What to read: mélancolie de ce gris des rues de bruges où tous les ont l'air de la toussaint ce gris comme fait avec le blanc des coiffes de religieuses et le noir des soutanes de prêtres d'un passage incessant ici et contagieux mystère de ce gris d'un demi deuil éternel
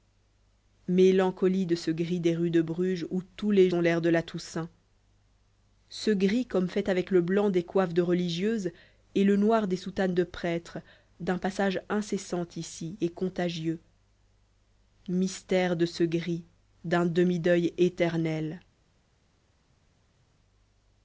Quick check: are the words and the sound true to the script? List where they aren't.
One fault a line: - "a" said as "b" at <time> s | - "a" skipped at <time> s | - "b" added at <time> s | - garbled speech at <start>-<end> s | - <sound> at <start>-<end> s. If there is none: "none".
none